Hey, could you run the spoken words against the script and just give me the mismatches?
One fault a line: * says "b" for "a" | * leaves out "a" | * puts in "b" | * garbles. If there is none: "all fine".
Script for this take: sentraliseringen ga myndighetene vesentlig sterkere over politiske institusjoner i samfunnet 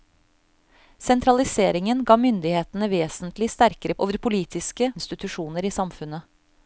all fine